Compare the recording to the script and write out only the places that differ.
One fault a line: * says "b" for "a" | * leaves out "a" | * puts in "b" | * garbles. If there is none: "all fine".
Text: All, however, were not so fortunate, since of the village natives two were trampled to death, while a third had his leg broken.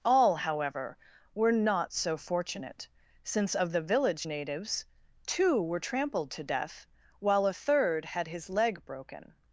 all fine